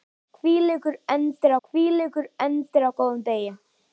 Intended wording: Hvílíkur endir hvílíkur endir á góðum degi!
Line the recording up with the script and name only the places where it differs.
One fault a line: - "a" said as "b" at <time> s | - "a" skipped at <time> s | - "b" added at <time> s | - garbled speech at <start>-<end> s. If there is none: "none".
none